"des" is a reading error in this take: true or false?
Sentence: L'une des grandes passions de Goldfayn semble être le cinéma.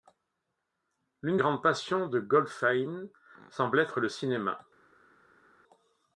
true